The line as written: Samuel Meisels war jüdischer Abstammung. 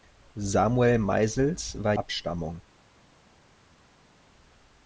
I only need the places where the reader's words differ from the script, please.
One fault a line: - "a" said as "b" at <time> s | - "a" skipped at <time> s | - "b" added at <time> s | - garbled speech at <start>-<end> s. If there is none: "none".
- "jüdischer" skipped at 1.9 s